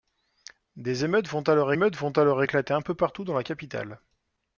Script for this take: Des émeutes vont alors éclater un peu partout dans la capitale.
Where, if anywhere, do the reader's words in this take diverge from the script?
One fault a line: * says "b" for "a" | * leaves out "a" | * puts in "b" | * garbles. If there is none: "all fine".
* puts in "émeutes vont alors"